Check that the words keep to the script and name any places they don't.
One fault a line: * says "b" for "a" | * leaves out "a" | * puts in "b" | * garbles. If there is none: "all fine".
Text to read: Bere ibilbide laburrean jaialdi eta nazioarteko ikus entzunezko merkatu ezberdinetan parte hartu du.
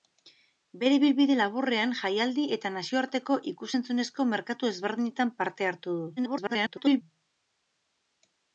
* garbles